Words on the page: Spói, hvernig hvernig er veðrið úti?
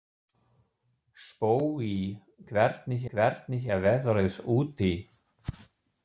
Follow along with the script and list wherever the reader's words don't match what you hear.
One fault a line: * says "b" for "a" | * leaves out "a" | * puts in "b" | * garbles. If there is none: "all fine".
all fine